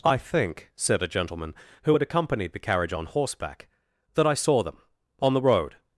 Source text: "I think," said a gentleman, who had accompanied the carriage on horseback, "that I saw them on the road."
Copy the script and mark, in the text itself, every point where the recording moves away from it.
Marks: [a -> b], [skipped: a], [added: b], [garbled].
"I think," said a gentleman, who had accompanied the carriage on horseback, "that I saw them on the road."